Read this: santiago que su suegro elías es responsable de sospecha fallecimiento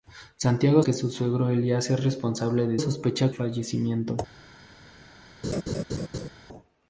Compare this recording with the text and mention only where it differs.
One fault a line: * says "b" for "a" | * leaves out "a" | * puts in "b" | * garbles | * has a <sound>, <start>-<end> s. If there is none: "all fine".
* has a laugh, 5.4-6.3 s